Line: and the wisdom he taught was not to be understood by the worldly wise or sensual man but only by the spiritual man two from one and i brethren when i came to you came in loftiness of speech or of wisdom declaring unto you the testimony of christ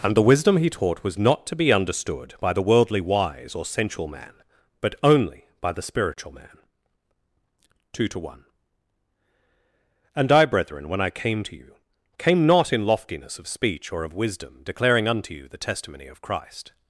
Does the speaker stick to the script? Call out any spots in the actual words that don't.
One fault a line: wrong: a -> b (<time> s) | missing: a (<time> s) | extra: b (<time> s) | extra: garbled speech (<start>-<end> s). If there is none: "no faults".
wrong: from -> to (8.1 s)
extra: not (12.5 s)